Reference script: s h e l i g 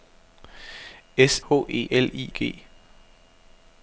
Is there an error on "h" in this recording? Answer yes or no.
no